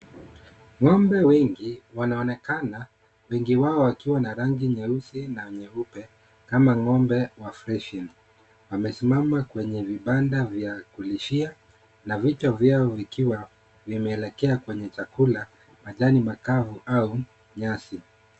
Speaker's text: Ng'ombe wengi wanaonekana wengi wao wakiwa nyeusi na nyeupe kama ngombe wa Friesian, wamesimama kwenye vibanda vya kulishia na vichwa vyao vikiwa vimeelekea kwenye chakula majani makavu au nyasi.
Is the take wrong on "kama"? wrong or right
right